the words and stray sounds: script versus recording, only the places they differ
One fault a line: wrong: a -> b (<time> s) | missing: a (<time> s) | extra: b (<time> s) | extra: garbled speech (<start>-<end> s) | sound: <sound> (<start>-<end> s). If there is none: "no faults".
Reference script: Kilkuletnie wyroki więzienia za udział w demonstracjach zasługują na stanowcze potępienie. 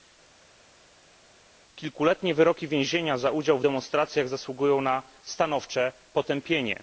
no faults